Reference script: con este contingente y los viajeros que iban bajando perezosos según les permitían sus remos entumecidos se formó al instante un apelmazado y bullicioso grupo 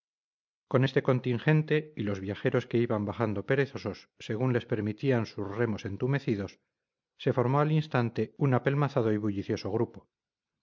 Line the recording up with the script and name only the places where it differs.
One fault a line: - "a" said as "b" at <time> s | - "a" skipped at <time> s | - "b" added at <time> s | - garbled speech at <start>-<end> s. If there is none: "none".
none